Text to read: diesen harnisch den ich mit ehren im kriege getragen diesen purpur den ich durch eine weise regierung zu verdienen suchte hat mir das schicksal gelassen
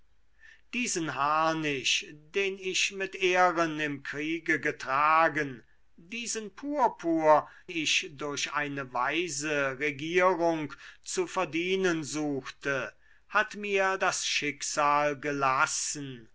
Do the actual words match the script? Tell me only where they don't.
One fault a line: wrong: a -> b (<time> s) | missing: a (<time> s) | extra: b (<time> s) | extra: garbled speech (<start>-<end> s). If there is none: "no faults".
missing: den (7.5 s)